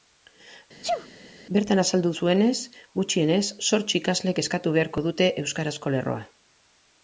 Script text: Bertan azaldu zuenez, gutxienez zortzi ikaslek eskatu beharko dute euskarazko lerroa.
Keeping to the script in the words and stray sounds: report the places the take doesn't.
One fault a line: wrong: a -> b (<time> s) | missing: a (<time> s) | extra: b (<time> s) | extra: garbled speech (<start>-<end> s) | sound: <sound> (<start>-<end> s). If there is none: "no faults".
sound: sneeze (0.8-1.1 s)